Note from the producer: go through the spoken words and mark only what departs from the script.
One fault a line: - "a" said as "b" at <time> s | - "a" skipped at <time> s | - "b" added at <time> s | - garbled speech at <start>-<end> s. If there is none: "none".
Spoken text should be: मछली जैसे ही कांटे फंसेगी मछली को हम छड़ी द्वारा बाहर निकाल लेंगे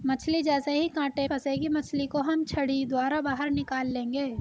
none